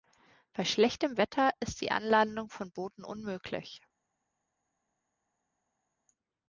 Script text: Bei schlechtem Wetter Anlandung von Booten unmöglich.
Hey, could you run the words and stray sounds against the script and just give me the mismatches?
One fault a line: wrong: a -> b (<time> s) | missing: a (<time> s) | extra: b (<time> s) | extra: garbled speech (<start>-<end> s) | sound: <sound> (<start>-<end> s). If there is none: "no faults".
extra: ist die (1.6 s)